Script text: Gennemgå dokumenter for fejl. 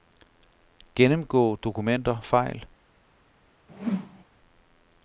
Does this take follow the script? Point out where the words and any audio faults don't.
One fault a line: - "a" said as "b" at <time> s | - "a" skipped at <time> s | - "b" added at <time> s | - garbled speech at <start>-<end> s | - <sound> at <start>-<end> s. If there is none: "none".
- "for" skipped at 2.2 s
- whoosh at 3.7-4.2 s